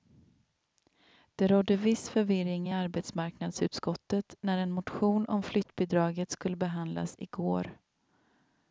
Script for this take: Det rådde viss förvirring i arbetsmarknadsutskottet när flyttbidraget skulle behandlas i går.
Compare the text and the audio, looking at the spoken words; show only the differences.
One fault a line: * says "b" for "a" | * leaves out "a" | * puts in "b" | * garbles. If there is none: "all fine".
* puts in "en motion om"